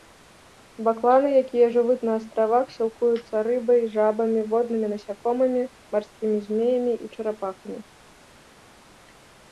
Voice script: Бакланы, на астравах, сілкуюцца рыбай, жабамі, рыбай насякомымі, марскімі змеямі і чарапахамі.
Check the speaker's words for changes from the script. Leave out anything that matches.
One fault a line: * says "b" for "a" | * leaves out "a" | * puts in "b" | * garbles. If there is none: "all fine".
* puts in "якія жывуць"
* says "воднымі" for "рыбай"